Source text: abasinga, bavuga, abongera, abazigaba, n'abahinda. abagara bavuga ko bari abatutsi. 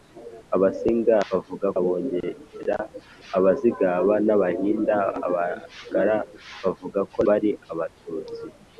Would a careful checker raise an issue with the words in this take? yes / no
no